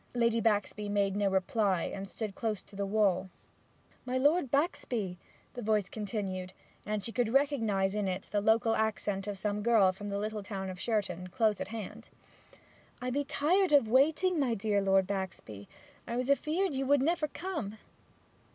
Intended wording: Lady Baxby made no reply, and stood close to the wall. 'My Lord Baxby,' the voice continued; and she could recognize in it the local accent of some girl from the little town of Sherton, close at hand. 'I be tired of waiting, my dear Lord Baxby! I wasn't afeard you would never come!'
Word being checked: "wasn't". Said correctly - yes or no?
no